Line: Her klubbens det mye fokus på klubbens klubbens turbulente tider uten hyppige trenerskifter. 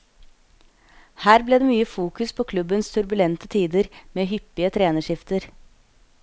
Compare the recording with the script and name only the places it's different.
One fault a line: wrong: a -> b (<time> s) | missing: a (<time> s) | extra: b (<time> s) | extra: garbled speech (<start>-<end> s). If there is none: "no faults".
wrong: klubbens -> ble (1.5 s)
missing: klubbens (2.9 s)
wrong: uten -> med (4.1 s)